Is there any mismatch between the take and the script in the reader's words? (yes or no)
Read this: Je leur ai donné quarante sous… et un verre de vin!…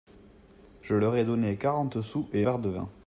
yes